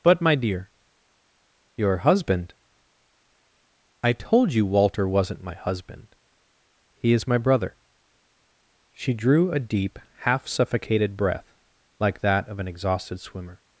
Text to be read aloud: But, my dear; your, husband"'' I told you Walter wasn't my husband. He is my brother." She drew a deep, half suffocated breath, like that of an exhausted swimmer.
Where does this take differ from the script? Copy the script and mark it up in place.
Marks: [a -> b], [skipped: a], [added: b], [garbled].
But, my dear; your, husband"'' I told you Walter wasn't my husband. He is my brother." She drew a deep, half suffocated breath, like that of an exhausted swimmer.